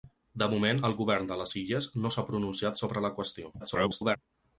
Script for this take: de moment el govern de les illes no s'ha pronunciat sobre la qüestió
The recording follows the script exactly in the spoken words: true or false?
false